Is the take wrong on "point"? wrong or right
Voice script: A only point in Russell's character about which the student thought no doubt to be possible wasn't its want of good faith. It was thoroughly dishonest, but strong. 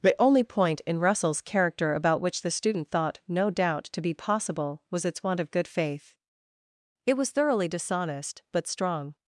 right